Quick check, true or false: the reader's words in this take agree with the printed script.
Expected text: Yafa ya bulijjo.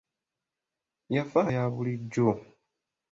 true